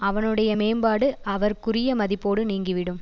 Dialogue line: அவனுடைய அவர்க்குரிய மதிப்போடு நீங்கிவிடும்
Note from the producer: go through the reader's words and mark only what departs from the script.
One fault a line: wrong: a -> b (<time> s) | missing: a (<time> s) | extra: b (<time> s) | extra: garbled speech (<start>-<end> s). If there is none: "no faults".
extra: மேம்பாடு (0.5 s)